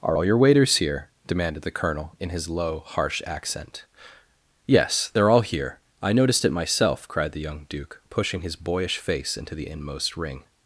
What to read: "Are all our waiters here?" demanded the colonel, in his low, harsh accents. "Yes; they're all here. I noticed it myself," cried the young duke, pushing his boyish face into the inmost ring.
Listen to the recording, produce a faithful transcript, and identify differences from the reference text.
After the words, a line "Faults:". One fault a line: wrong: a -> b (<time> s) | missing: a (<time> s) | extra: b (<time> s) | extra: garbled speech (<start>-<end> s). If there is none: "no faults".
"Are all your waiters here?" demanded the colonel, in his low, harsh accent. "Yes; they're all here. I noticed it myself," cried the young duke, pushing his boyish face into the inmost ring.
Faults:
wrong: our -> your (0.2 s)
wrong: accents -> accent (3.3 s)